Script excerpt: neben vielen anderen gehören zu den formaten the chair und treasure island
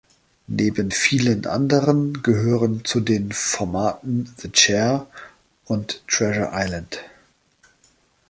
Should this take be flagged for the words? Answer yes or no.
no